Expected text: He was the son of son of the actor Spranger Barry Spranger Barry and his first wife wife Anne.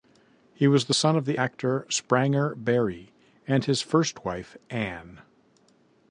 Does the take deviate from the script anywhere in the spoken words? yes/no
yes